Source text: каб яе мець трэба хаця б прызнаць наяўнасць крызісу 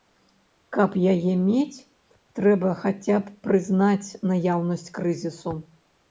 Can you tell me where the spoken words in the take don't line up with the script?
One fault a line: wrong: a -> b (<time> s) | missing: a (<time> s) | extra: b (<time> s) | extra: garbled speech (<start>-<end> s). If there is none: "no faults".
no faults